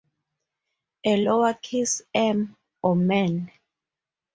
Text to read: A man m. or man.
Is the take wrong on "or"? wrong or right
right